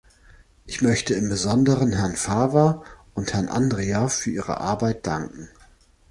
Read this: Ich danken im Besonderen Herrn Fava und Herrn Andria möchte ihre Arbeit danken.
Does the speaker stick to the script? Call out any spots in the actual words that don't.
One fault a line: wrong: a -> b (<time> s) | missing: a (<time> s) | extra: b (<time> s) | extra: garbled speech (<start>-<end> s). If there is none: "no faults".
wrong: danken -> möchte (0.8 s)
wrong: möchte -> für (4.1 s)